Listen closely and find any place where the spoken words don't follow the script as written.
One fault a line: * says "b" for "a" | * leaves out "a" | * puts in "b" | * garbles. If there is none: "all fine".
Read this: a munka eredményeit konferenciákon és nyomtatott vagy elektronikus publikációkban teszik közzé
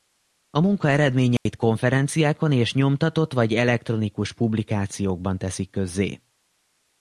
all fine